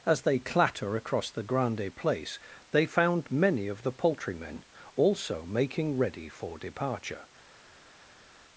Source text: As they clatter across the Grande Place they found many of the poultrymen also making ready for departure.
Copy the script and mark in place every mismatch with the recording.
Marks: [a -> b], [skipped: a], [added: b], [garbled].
As they clatter across the Grande Place they found many of the poultrymen also making ready for departure.